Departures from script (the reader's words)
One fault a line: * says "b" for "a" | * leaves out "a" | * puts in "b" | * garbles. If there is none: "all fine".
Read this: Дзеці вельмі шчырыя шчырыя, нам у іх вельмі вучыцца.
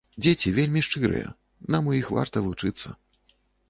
* leaves out "шчырыя"
* says "варта" for "вельмі"